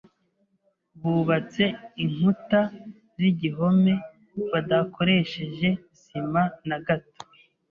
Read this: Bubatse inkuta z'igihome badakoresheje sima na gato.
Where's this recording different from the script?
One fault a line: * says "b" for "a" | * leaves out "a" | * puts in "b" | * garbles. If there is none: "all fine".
all fine